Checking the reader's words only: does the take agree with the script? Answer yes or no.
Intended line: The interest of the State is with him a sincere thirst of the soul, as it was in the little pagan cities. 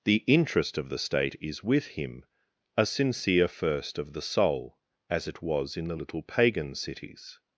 no